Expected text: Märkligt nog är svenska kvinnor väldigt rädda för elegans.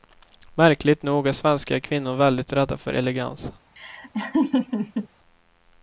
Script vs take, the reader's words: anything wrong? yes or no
no